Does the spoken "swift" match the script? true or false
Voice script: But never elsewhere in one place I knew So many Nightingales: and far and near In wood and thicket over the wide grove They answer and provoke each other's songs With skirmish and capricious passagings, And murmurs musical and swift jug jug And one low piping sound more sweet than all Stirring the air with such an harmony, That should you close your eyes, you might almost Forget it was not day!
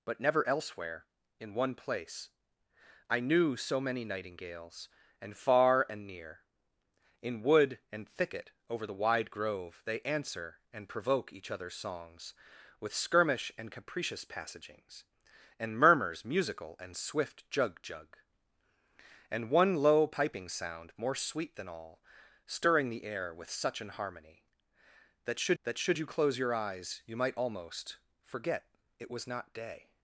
true